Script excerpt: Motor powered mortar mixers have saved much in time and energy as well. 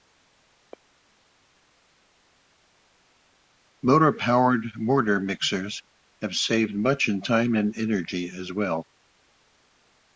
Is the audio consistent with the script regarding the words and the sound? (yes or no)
yes